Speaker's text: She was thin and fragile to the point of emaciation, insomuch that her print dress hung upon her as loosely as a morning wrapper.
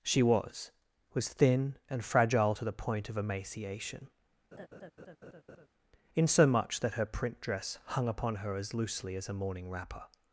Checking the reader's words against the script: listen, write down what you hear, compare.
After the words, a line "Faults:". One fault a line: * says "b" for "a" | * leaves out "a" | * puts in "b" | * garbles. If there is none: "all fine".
She was was thin and fragile to the point of emaciation, insomuch that her print dress hung upon her as loosely as a morning wrapper.
Faults:
* puts in "was"